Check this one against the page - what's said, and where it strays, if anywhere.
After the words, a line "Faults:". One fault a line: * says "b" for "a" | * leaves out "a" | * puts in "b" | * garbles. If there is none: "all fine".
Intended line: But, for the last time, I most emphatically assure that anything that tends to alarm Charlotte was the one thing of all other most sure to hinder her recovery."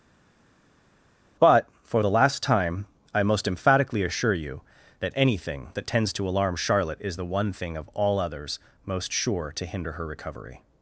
But, for the last time, I most emphatically assure you that anything that tends to alarm Charlotte is the one thing of all others most sure to hinder her recovery."
Faults:
* puts in "you"
* says "is" for "was"
* says "others" for "other"